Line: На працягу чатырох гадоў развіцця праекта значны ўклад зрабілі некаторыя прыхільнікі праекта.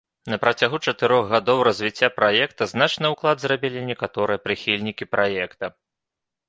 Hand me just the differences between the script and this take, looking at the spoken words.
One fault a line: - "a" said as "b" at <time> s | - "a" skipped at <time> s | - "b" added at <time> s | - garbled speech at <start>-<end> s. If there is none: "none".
none